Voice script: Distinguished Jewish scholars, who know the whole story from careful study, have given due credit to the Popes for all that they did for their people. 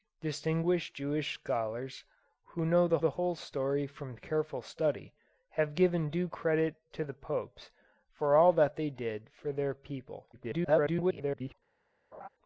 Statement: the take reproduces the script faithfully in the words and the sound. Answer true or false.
false